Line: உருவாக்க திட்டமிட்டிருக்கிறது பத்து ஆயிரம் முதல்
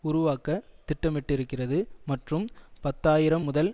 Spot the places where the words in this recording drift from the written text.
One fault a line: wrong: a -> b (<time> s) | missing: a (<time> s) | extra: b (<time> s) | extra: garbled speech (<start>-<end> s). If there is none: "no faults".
extra: மற்றும் (2.0 s)